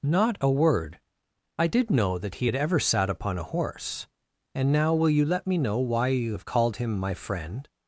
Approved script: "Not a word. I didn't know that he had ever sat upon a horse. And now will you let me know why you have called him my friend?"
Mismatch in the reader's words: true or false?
true